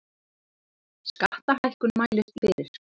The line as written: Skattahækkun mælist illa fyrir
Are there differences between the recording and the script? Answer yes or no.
yes